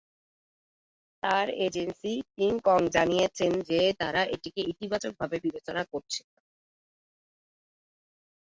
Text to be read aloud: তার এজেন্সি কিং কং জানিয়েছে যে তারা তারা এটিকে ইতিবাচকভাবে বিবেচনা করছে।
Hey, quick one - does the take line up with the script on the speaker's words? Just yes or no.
no